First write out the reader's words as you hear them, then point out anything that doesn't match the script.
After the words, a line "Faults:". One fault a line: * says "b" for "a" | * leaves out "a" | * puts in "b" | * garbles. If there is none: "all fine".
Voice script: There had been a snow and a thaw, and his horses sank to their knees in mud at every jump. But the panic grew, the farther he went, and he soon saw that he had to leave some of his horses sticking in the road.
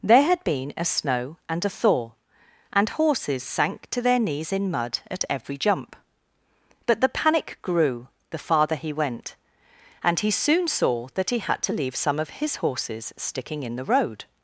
There had been a snow and a thaw, and horses sank to their knees in mud at every jump. But the panic grew, the farther he went, and he soon saw that he had to leave some of his horses sticking in the road.
Faults:
* leaves out "his"